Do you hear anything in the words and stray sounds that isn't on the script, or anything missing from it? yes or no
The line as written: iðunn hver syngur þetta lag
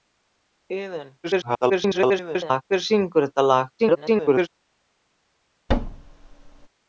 yes